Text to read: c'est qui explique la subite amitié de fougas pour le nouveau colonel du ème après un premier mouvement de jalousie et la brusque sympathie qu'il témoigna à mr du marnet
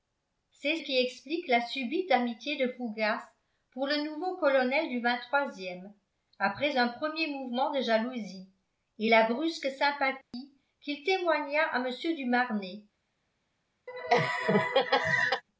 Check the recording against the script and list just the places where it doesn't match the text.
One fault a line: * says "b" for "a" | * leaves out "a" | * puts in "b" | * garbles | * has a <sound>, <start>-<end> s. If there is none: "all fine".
* has a dropout, 10.2-10.3 s
* has a laugh, 13.9-15.4 s